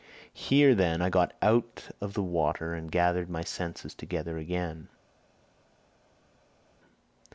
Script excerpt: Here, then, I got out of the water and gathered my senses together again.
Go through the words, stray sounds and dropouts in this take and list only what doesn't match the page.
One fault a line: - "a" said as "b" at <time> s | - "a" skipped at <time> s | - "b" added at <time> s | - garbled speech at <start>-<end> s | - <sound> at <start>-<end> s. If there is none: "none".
none